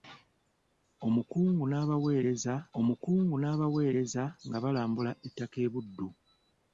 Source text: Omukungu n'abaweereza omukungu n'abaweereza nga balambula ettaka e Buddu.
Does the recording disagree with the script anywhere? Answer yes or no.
no